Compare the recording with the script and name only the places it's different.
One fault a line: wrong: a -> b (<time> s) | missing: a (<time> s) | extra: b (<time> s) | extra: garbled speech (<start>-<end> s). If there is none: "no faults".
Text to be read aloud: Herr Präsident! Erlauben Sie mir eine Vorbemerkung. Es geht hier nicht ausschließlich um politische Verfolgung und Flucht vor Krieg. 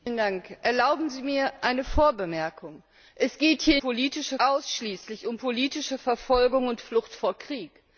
wrong: nicht -> politische (3.8 s)